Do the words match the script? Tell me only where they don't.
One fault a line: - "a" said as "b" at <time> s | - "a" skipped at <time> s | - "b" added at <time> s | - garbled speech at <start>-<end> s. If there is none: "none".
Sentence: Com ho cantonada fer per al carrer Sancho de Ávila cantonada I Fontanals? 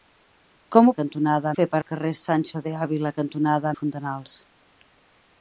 none